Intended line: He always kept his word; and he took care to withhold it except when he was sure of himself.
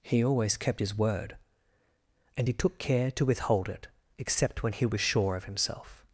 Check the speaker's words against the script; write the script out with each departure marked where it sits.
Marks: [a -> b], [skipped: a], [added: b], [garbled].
He always kept his word; and he took care to withhold it except when he was sure of himself.